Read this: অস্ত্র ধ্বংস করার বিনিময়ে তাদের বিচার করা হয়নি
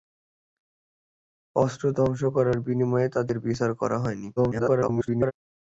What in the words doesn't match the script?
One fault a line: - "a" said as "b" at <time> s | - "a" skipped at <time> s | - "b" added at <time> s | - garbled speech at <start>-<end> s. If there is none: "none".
- garbled speech at 4.4-5.3 s